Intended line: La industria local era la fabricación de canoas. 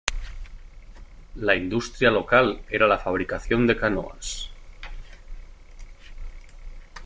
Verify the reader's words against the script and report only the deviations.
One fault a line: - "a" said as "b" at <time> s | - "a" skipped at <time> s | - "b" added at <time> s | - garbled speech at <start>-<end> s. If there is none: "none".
none